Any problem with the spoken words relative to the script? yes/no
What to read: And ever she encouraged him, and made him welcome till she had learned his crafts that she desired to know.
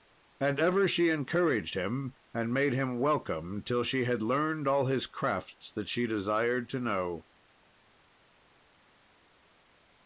yes